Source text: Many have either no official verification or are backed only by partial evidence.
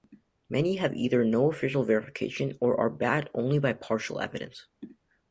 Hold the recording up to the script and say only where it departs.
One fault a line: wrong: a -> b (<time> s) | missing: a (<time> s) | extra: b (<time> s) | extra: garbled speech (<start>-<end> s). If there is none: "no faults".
no faults